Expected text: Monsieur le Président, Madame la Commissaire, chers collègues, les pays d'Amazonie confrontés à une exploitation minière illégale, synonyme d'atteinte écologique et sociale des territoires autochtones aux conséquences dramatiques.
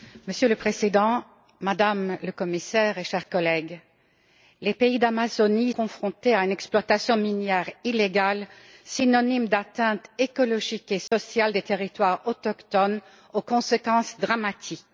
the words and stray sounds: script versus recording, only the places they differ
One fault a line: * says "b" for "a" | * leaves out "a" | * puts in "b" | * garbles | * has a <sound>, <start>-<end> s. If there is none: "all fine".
* has a dropout, 11.1-11.1 s